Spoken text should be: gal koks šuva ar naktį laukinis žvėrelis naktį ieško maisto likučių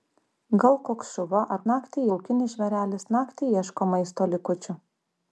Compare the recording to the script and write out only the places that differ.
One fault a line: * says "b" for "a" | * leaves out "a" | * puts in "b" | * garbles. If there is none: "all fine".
all fine